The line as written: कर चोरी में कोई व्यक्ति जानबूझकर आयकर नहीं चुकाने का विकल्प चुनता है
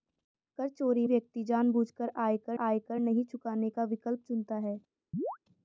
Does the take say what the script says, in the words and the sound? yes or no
no